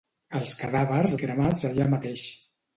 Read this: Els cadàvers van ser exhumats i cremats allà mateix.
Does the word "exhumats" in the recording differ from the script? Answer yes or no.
yes